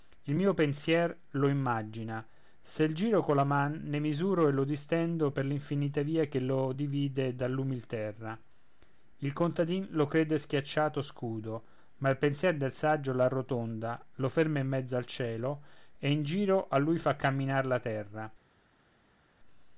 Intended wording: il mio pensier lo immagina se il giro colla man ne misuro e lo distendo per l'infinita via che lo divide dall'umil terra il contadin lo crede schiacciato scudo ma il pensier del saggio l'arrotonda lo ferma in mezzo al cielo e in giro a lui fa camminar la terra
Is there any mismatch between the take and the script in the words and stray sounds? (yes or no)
no